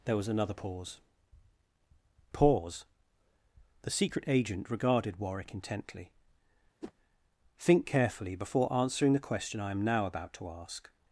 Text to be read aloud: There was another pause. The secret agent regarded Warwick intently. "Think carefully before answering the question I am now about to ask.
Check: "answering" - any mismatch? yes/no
no